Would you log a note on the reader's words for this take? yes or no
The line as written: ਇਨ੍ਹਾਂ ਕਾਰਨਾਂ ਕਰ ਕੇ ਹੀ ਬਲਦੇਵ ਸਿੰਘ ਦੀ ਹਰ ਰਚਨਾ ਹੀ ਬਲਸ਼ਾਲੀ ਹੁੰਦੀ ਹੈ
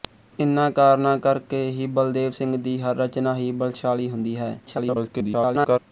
yes